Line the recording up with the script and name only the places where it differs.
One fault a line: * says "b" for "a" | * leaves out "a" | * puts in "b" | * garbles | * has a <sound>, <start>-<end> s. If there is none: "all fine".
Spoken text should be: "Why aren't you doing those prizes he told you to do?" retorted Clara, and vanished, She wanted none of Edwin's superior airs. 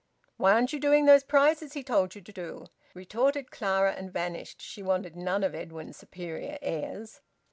all fine